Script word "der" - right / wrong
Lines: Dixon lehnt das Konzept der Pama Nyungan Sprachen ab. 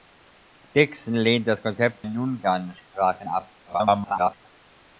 wrong